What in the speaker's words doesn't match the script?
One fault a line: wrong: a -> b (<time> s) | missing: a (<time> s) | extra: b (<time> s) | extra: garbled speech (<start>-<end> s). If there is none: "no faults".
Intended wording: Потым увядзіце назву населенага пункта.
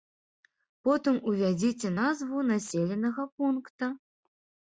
no faults